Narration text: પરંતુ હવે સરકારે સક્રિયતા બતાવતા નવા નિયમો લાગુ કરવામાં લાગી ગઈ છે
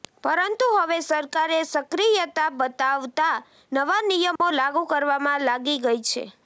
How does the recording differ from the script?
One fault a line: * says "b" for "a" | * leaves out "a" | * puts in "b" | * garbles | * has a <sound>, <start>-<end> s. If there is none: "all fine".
* has a dropout, 4.4-4.4 s